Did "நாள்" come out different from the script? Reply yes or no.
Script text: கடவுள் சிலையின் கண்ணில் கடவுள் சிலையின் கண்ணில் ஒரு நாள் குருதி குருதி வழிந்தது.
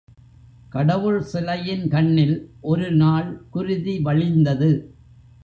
no